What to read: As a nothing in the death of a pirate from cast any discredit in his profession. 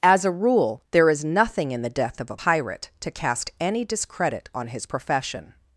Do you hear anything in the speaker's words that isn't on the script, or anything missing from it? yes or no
yes